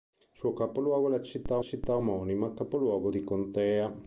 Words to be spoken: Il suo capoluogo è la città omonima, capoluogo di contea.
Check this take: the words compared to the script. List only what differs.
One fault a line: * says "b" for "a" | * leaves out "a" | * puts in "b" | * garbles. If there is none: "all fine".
* puts in "città"